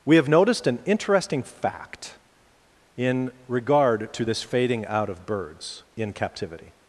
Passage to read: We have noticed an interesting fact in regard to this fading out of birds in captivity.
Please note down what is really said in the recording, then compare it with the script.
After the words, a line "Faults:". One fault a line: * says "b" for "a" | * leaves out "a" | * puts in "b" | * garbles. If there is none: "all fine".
We have noticed an interesting fact in regard to this fading out of birds in captivity.
Faults:
all fine